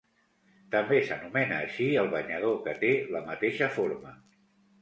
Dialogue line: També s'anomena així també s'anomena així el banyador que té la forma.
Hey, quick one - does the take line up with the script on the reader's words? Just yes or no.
no